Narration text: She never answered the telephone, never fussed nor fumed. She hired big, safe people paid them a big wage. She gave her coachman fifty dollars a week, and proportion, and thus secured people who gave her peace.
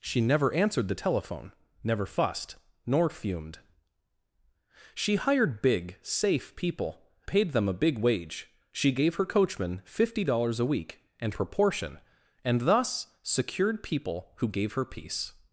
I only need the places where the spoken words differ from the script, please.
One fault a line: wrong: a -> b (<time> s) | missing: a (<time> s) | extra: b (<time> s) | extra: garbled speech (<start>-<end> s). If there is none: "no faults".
no faults